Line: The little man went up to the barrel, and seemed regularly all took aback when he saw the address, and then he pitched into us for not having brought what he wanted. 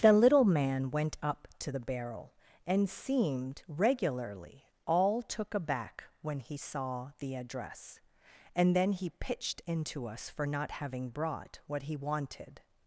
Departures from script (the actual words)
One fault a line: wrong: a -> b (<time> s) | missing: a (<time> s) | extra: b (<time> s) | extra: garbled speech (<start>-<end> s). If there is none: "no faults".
no faults